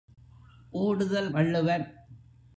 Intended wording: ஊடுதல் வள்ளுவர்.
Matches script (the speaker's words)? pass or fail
pass